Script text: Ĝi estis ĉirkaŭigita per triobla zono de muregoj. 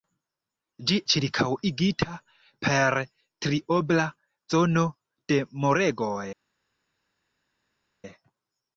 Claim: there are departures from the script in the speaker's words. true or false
true